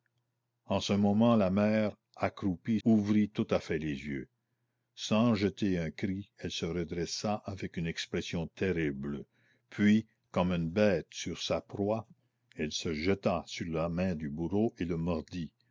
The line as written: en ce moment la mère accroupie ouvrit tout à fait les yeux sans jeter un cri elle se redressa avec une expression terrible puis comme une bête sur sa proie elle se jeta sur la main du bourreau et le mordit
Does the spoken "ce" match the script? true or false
true